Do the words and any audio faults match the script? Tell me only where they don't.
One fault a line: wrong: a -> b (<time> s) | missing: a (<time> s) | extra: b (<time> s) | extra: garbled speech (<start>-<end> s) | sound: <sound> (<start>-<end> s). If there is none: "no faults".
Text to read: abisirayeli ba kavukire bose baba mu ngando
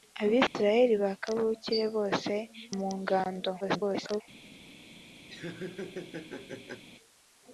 sound: dropout (0.5-0.5 s)
missing: baba (2.3 s)
extra: garbled speech (3.6-4.2 s)
sound: laugh (5.3-6.8 s)